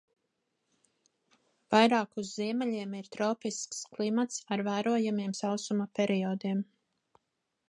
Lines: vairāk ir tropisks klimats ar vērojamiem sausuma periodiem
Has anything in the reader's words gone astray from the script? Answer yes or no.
yes